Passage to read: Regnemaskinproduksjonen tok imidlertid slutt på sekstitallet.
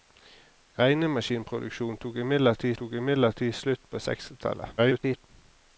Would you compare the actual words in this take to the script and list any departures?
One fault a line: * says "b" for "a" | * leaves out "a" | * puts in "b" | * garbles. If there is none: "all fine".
* puts in "tok imidlertid"
* garbles